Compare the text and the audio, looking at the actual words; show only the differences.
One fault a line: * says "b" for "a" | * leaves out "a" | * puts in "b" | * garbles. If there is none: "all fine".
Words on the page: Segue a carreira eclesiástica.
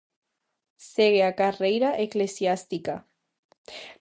all fine